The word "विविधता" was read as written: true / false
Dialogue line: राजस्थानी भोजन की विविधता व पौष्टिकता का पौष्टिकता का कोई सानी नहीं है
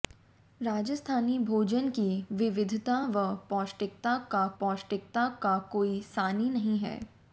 true